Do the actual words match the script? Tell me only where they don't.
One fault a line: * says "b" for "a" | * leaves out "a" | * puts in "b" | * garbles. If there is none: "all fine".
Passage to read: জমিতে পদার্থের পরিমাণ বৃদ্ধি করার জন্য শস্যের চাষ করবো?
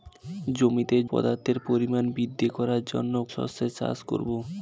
all fine